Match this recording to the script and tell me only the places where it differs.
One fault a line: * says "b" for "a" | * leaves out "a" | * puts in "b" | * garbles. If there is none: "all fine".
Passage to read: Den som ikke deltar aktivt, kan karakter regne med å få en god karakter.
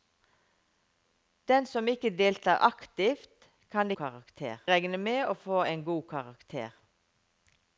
all fine